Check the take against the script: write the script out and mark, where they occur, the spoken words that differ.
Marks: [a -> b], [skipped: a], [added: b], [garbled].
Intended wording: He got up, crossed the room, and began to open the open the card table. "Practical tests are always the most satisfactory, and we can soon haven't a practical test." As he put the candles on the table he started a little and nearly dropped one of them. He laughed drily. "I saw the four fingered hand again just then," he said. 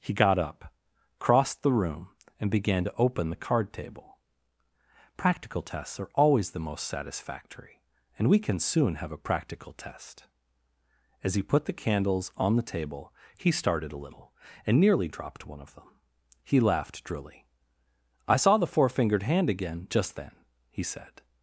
He got up, crossed the room, and began to open the [skipped: open the] card table. "Practical tests are always the most satisfactory, and we can soon [haven't -> have] a practical test." As he put the candles on the table he started a little and nearly dropped one of them. He laughed drily. "I saw the four fingered hand again just then," he said.